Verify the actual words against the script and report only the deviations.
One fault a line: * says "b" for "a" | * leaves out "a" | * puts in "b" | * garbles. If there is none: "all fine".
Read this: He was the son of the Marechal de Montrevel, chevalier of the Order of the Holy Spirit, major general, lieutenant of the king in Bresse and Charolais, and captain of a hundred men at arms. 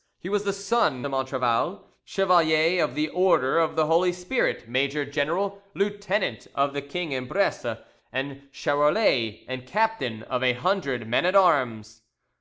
* leaves out "of the Marechal"